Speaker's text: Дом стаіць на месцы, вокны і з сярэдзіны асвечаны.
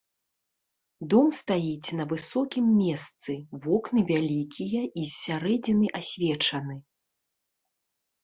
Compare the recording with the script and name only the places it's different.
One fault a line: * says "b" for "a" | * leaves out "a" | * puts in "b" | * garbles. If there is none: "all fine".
* puts in "высокім"
* puts in "вялікія"